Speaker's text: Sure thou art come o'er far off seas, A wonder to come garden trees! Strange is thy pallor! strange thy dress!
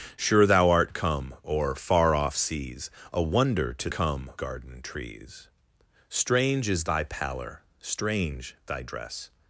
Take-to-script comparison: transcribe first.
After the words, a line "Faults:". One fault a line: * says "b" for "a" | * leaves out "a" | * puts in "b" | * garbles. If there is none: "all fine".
Sure thou art come o'er far off seas, A wonder to come garden trees! Strange is thy pallor! strange thy dress!
Faults:
all fine